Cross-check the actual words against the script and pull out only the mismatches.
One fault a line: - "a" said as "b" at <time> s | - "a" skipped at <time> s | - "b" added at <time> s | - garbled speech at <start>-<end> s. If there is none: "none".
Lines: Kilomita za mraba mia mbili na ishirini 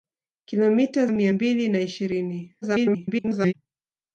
- "za mraba" skipped at 1.1 s
- garbled speech at 2.6-3.5 s